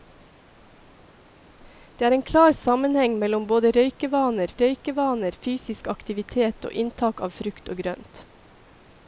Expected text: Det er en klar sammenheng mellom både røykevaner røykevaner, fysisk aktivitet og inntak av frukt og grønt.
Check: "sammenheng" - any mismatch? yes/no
no